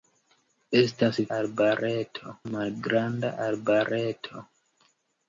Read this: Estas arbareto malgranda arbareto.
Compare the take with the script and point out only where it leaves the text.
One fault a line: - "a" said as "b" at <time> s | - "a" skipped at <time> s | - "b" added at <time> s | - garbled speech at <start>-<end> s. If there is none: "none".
none